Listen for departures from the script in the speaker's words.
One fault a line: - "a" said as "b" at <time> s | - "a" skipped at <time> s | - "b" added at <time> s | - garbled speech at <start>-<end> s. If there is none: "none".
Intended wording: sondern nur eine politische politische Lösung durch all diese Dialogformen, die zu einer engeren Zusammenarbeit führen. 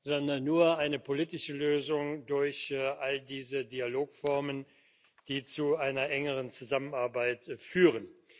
- "politische" skipped at 1.5 s